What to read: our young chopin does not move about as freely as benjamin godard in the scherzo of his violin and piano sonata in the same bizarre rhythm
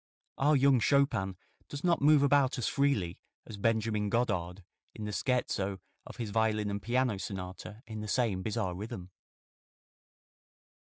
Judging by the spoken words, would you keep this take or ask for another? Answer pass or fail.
pass